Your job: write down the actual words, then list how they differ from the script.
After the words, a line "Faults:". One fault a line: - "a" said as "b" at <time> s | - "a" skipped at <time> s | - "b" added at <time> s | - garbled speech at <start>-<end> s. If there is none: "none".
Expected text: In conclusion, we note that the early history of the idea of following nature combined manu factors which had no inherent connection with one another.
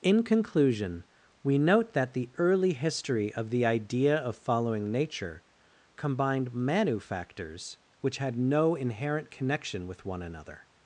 In conclusion, we note that the early history of the idea of following nature combined manu factors which had no inherent connection with one another.
Faults:
none